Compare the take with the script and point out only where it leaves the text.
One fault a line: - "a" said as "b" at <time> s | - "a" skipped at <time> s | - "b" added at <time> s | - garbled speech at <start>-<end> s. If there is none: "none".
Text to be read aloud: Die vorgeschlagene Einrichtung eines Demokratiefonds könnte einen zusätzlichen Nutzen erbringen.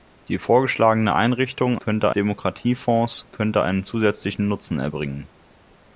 - "eines" said as "könnte" at 1.8 s